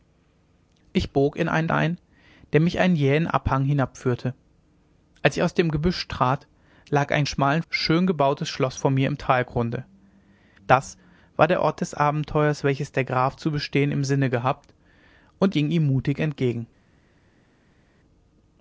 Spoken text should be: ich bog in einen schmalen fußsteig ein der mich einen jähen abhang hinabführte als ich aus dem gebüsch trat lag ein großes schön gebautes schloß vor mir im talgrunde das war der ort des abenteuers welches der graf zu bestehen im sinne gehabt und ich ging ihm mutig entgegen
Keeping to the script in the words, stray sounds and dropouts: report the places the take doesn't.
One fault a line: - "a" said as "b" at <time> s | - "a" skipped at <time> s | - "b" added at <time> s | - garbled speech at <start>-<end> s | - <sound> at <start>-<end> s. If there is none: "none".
- "schmalen fußsteig" skipped at 1.7 s
- "großes" said as "schmalen" at 7.2 s
- "ich" skipped at 15.5 s